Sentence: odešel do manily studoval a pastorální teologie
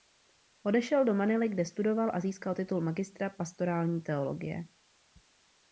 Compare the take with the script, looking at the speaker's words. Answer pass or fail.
fail